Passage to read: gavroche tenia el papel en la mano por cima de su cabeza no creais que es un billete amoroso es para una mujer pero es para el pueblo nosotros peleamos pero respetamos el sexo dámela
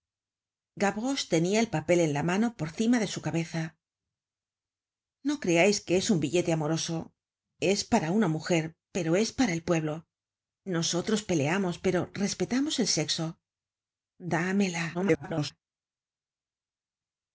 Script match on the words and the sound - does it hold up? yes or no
no